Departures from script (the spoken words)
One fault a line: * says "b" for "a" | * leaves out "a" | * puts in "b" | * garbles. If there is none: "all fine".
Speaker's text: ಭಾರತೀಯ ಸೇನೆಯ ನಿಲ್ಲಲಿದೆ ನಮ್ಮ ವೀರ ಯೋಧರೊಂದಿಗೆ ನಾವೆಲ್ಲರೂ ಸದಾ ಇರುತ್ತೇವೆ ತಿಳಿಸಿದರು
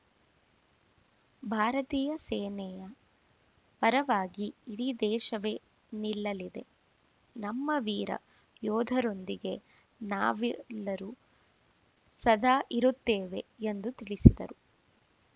* puts in "ಪರವಾಗಿ ಇಡೀ ದೇಶವೇ"
* puts in "ಎಂದು"